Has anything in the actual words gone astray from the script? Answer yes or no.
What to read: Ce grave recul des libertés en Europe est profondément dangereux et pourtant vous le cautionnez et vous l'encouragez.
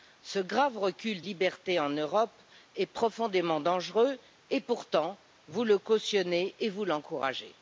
yes